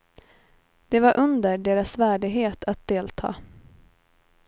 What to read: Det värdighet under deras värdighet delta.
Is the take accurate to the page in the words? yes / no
no